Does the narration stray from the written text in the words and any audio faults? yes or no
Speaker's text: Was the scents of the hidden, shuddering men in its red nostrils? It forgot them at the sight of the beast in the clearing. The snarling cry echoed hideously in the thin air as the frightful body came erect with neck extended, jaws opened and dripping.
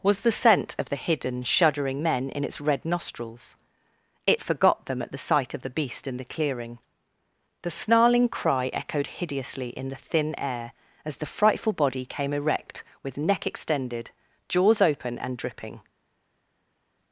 yes